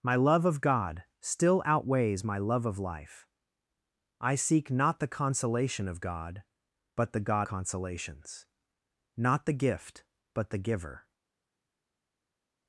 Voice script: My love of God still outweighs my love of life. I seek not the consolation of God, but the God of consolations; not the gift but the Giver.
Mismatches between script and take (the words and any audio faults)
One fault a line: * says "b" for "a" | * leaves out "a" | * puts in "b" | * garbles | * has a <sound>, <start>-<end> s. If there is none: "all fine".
* leaves out "of"